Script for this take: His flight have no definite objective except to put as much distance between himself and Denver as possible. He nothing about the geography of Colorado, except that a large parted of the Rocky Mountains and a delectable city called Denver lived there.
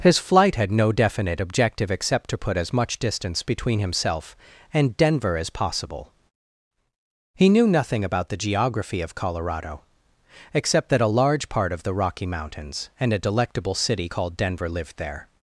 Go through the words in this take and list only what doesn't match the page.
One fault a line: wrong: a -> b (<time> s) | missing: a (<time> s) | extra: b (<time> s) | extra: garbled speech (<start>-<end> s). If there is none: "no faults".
wrong: have -> had (0.6 s)
extra: knew (7.5 s)
wrong: parted -> part (11.5 s)